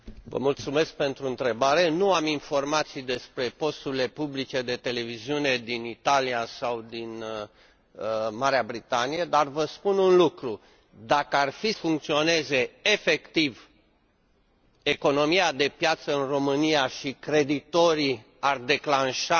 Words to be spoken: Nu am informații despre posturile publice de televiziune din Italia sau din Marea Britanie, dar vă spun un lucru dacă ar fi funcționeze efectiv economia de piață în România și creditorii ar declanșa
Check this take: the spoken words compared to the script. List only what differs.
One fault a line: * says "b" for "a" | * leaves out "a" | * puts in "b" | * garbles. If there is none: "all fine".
all fine